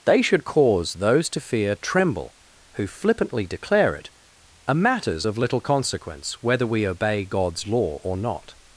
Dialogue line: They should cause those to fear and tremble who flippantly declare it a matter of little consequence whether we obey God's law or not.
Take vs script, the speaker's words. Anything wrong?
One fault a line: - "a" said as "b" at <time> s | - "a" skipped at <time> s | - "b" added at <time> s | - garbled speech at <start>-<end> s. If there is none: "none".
- "and" skipped at 1.8 s
- "matter" said as "matters" at 4.7 s